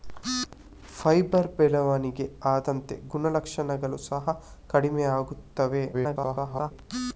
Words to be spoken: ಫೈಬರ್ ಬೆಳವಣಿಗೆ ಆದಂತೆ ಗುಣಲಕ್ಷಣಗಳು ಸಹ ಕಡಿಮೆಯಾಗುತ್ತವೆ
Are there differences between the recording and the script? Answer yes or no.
yes